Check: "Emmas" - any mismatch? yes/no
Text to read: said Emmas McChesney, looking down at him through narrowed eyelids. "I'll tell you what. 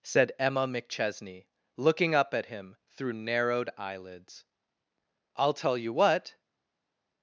yes